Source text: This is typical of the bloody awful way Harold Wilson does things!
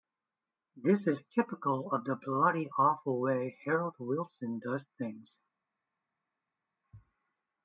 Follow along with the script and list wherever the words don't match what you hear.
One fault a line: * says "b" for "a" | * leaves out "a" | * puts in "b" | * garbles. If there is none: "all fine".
all fine